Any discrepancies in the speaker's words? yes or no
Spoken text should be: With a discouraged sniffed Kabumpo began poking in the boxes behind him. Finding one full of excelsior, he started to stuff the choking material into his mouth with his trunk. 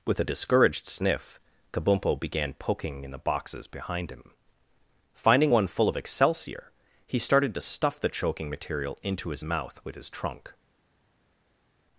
yes